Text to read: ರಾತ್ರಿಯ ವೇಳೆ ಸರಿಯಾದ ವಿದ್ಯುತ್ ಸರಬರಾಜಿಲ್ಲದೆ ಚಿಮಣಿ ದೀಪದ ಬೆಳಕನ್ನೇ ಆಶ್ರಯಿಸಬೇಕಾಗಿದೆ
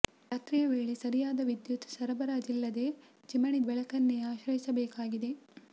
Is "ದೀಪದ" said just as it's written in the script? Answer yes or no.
no